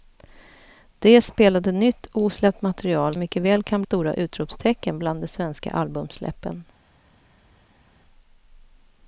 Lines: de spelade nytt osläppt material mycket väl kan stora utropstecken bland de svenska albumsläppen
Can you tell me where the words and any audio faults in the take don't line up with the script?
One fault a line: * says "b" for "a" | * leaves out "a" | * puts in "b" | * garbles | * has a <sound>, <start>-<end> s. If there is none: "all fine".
all fine